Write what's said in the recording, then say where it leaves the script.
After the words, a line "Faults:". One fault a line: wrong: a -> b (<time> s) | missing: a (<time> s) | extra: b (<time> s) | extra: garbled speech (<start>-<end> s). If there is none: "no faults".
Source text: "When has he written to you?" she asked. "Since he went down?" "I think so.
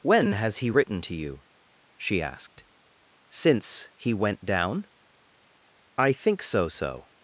"When has he written to you?" she asked. "Since he went down?" "I think so so.
Faults:
extra: so (6.7 s)